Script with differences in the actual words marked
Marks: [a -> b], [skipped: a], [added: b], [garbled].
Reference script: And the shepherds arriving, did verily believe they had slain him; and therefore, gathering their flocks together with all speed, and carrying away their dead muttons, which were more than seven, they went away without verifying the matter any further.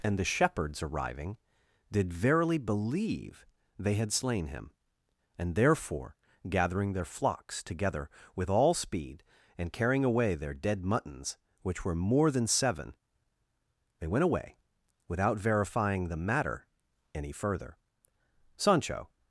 And the shepherds arriving, did verily believe they had slain him; and therefore, gathering their flocks together with all speed, and carrying away their dead muttons, which were more than seven, they went away without verifying the matter any further. [added: Sancho]